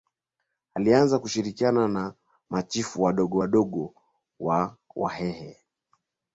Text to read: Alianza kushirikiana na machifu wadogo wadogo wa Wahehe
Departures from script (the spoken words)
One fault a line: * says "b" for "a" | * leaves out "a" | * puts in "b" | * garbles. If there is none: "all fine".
all fine